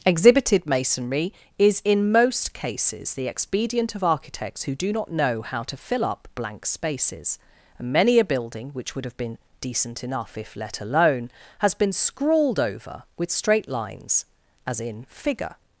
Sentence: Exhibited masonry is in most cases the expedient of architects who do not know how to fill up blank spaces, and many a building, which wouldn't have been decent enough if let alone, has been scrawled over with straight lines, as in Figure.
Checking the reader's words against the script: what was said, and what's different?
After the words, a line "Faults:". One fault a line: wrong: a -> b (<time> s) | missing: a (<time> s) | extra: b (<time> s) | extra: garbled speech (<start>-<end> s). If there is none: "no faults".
Exhibited masonry is in most cases the expedient of architects who do not know how to fill up blank spaces, and many a building, which would have been decent enough if let alone, has been scrawled over with straight lines, as in Figure.
Faults:
wrong: wouldn't -> would (8.9 s)